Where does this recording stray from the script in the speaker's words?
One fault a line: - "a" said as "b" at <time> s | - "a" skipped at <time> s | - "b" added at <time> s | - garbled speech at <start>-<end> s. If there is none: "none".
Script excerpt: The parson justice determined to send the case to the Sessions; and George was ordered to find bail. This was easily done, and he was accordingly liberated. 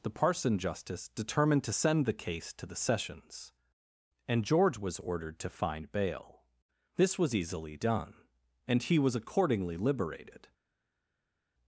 none